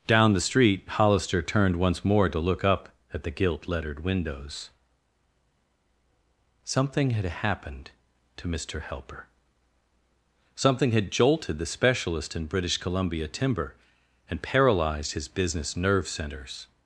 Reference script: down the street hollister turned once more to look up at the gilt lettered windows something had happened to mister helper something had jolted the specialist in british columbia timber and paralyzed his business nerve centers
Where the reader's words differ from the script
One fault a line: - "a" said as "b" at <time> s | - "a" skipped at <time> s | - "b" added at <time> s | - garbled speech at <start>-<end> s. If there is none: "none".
none